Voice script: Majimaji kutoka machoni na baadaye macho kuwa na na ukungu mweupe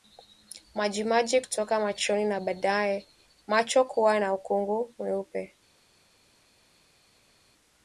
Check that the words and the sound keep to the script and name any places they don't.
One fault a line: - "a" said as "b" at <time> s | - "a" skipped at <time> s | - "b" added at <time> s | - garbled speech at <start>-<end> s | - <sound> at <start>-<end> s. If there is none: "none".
- "na" skipped at 4.3 s